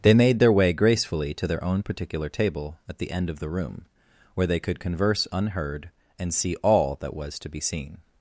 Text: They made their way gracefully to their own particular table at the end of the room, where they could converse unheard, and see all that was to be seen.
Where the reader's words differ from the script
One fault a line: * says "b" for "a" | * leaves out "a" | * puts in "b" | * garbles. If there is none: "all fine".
all fine